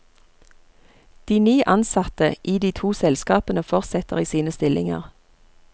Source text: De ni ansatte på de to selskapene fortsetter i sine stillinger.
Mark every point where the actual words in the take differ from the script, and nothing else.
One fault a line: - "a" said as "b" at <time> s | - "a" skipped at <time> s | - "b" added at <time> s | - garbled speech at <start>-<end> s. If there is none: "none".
- "på" said as "i" at 2.4 s